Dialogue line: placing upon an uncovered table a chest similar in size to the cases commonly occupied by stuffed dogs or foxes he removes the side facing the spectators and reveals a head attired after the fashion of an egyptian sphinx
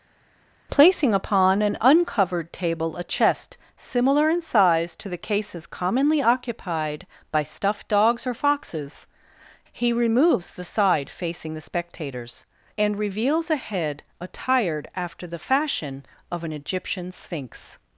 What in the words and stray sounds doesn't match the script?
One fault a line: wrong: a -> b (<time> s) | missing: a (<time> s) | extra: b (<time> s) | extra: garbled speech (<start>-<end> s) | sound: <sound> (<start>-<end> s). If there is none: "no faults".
no faults